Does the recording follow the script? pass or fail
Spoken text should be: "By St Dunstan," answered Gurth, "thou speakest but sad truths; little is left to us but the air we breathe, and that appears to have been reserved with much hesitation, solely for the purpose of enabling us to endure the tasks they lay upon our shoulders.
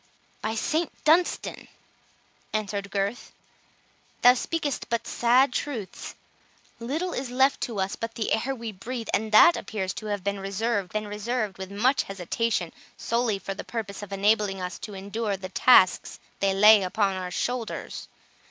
fail